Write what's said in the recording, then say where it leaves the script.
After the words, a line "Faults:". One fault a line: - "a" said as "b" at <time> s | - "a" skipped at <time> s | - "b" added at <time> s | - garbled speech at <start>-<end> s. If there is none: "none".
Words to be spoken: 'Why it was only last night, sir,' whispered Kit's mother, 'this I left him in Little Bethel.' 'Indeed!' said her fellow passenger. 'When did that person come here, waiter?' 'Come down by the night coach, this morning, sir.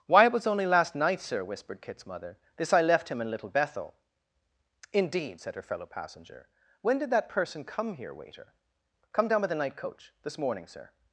'Why it was only last night, sir,' whispered Kit's mother, 'this I left him in Little Bethel.' 'Indeed!' said her fellow passenger. 'When did that person come here, waiter?' 'Come down by the night coach, this morning, sir.
Faults:
none